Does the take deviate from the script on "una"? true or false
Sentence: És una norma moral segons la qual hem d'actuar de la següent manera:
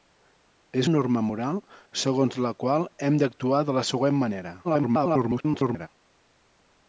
true